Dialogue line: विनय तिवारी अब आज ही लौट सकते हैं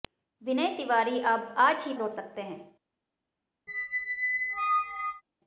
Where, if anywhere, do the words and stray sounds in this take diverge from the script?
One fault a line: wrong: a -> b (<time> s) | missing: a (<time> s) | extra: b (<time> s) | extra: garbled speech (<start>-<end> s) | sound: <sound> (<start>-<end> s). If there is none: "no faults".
sound: squeak (3.7-5.2 s)